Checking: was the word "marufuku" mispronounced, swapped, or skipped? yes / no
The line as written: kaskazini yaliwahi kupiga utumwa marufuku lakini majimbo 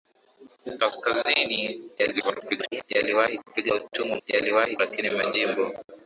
yes